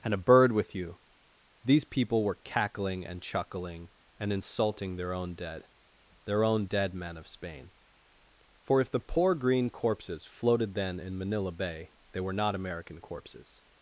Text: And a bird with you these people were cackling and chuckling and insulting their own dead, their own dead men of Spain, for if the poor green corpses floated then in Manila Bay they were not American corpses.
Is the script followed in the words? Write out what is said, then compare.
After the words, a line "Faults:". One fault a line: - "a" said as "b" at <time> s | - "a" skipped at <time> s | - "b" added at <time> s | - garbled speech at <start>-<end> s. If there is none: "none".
And a bird with you these people were cackling and chuckling and insulting their own dead, their own dead men of Spain, for if the poor green corpses floated then in Manila Bay they were not American corpses.
Faults:
none